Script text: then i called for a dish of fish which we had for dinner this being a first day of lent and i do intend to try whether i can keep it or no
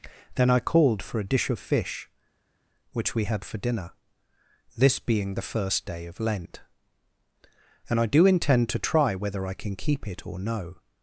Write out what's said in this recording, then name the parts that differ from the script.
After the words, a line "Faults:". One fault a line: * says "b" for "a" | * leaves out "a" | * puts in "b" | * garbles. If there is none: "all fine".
then i called for a dish of fish which we had for dinner this being the first day of lent and i do intend to try whether i can keep it or no
Faults:
* says "the" for "a"